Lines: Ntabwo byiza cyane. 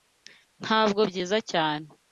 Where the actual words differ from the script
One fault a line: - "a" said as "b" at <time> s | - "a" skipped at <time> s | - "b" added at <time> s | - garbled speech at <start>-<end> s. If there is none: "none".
none